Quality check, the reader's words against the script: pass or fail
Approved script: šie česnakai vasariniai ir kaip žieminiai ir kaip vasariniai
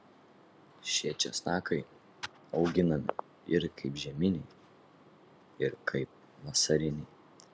fail